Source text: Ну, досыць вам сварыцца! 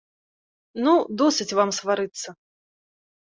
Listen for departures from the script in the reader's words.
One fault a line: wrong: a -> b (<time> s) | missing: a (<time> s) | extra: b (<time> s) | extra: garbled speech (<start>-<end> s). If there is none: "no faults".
no faults